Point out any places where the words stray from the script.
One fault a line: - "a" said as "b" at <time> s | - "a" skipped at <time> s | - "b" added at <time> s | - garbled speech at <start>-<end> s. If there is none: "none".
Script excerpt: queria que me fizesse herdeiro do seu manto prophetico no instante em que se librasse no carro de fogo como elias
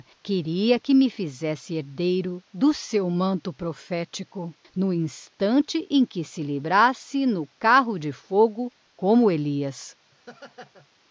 none